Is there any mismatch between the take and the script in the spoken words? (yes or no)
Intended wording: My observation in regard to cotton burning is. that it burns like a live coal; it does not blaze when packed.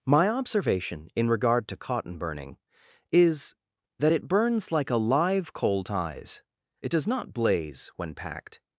yes